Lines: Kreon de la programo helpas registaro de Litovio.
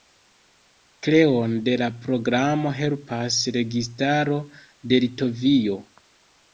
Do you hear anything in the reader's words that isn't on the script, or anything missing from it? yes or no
no